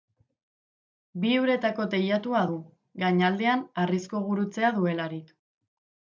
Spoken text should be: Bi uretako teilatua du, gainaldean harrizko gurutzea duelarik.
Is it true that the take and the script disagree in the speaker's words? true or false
false